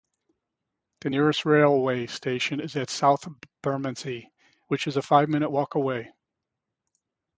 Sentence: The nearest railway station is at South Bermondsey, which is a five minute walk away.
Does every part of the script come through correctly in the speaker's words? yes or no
yes